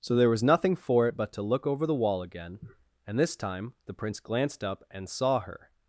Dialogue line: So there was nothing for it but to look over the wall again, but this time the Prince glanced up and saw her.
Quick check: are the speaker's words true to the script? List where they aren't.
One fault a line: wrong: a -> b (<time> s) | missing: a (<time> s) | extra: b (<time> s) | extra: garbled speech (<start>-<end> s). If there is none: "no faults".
wrong: but -> and (3.1 s)